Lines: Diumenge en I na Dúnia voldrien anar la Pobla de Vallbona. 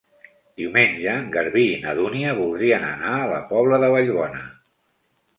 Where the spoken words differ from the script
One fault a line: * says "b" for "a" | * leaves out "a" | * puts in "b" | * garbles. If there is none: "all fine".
* puts in "Garbí"
* puts in "a"